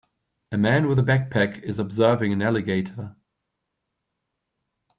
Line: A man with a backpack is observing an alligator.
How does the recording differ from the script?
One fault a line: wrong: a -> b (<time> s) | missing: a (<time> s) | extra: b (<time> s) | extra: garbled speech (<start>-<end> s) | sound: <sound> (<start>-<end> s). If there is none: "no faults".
no faults